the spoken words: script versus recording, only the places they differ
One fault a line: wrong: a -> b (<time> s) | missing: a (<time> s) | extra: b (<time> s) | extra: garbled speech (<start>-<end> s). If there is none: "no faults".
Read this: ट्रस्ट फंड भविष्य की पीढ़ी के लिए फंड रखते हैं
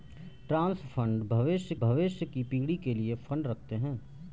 extra: भविष्य (1.7 s)